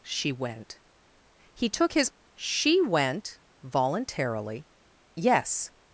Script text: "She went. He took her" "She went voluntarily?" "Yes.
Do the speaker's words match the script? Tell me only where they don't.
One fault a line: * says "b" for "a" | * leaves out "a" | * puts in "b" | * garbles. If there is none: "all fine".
* says "his" for "her"